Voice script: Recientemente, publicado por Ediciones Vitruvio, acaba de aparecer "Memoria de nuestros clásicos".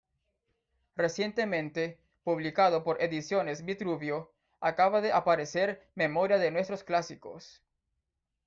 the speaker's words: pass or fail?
pass